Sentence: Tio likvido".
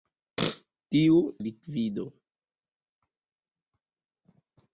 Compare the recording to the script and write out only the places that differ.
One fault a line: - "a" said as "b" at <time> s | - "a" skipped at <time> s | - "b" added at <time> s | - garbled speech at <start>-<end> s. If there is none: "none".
none